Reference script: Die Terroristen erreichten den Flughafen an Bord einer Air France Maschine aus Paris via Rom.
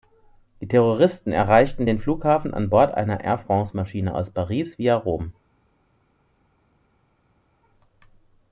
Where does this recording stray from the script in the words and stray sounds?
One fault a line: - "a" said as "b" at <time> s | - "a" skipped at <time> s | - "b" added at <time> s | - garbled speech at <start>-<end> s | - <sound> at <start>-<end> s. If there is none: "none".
none